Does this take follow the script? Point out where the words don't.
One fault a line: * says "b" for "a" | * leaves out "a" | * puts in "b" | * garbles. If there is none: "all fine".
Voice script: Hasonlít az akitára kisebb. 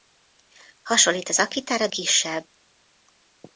all fine